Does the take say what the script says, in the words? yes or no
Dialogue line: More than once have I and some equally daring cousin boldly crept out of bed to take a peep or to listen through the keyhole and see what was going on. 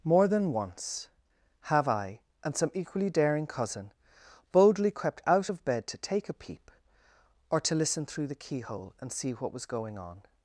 yes